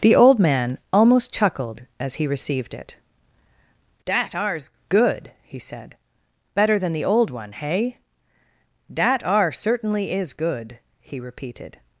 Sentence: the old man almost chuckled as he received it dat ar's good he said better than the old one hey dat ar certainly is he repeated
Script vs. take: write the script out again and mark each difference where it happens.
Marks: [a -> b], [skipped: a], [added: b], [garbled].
the old man almost chuckled as he received it dat ar's good he said better than the old one hey dat ar certainly is [added: good] he repeated